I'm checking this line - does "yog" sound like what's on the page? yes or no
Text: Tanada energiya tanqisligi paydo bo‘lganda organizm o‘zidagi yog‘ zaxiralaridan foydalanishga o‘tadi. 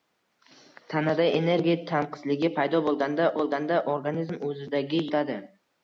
no